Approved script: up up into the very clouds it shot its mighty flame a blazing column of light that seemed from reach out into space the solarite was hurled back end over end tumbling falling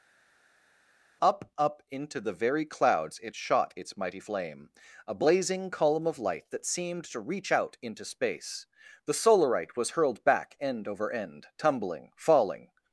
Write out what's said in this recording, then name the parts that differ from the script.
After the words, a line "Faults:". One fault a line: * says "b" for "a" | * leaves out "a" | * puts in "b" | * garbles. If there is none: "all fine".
up up into the very clouds it shot its mighty flame a blazing column of light that seemed to reach out into space the solarite was hurled back end over end tumbling falling
Faults:
* says "to" for "from"